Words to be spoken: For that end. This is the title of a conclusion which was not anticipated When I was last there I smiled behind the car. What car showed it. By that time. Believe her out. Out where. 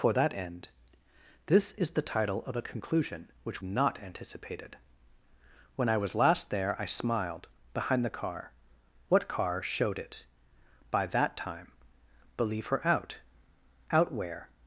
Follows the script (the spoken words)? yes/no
no